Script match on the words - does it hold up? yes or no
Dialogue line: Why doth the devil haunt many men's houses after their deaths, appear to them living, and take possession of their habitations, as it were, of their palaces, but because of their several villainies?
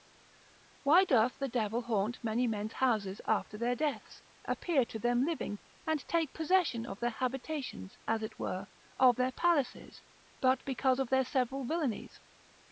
yes